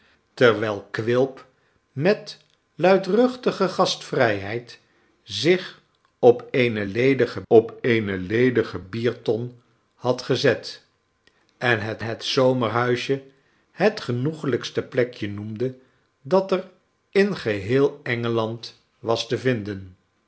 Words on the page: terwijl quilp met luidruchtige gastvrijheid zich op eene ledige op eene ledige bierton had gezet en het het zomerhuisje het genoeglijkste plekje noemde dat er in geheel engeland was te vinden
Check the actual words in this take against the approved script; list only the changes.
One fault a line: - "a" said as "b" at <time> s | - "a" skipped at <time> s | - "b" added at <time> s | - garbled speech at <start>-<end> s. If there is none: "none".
none